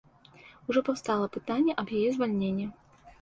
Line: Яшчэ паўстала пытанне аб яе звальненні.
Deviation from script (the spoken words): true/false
true